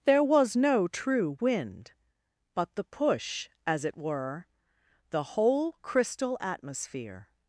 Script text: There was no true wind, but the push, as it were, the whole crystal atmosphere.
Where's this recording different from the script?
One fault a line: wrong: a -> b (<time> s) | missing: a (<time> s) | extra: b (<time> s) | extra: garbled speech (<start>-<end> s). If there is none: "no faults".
no faults